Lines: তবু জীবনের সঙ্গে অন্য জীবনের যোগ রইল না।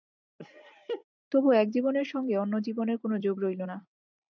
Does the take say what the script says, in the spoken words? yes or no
no